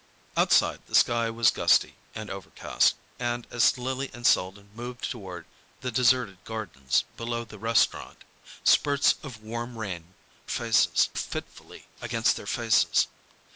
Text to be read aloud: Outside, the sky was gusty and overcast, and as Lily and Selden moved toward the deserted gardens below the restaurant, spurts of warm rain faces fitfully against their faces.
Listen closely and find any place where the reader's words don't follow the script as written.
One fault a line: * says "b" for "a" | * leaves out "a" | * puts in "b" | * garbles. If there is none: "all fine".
all fine